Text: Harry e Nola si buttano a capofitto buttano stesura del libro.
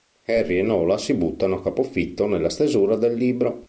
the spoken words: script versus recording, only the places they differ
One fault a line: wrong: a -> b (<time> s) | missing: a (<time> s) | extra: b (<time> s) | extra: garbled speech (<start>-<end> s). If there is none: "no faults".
wrong: buttano -> nella (2.2 s)